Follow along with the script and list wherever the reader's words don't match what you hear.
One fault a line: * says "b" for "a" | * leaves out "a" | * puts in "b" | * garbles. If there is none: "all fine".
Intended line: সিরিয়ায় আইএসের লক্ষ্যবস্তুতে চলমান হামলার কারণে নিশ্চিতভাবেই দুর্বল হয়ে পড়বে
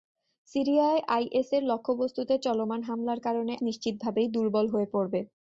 all fine